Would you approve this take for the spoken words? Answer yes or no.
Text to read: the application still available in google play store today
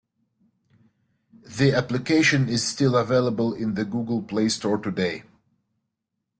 no